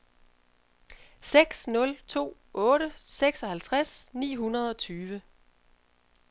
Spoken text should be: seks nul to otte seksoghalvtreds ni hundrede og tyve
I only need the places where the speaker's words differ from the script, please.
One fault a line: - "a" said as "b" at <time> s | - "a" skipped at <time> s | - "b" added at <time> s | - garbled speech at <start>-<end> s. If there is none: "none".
none